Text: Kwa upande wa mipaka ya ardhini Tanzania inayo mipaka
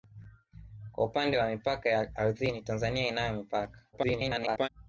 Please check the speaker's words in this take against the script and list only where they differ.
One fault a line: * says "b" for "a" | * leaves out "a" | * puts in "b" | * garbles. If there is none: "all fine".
* garbles